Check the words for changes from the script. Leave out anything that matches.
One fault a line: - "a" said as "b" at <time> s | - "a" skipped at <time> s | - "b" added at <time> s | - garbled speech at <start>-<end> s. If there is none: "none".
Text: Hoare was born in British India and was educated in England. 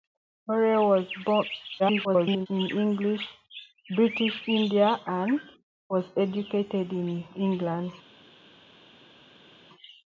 - garbled speech at 1.8-2.5 s